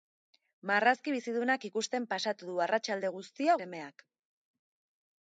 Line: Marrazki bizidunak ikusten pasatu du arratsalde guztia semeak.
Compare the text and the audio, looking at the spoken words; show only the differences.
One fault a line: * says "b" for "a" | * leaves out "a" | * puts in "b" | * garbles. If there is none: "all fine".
all fine